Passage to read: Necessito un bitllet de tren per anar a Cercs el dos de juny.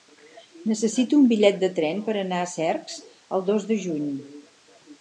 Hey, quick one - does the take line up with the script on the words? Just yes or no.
yes